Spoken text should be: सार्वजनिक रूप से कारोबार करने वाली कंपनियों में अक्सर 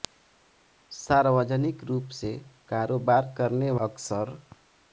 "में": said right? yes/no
no